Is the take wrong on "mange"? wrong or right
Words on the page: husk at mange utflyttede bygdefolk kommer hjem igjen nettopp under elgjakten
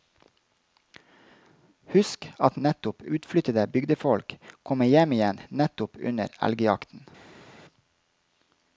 wrong